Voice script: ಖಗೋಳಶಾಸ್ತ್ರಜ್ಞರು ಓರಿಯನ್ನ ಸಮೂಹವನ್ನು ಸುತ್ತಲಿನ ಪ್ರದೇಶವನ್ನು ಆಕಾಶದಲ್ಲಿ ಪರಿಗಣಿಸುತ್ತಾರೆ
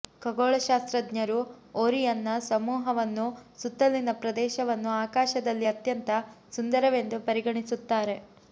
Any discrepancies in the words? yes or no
yes